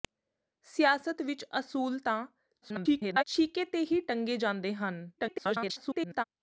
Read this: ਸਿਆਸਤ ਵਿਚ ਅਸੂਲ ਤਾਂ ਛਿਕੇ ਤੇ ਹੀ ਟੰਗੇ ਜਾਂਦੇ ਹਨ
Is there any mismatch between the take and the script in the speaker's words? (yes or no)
yes